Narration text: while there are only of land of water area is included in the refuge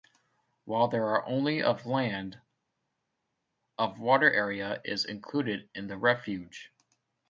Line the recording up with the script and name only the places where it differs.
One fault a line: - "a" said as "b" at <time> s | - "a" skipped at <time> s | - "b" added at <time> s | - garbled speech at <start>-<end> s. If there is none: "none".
none